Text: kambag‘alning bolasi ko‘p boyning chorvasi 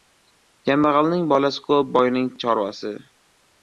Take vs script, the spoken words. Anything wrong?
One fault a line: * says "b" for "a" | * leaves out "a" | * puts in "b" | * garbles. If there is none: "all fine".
all fine